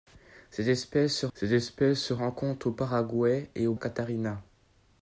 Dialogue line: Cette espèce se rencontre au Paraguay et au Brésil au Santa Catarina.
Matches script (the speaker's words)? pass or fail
fail